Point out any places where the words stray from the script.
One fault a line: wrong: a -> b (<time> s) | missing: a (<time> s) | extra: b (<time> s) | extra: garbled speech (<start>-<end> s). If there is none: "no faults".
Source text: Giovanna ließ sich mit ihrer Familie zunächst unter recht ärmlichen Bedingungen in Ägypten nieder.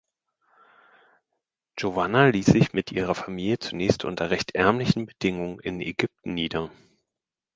no faults